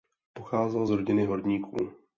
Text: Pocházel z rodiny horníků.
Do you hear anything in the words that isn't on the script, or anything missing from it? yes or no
no